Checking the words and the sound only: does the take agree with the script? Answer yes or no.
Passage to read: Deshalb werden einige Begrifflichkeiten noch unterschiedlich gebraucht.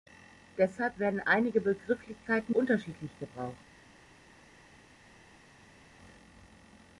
no